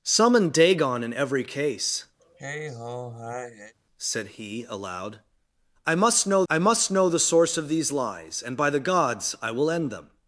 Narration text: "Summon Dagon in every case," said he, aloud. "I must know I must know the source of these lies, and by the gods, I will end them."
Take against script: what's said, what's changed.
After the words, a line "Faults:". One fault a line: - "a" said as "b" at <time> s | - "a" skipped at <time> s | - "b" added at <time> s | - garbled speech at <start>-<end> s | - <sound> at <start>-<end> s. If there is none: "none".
"Summon Dagon in every case," said he, aloud. "I must know I must know the source of these lies, and by the gods, I will end them."
Faults:
- sigh at 2.2-3.7 s